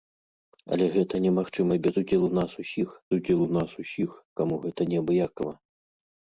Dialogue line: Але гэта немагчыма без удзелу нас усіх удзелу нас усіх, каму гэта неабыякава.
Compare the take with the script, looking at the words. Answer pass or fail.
pass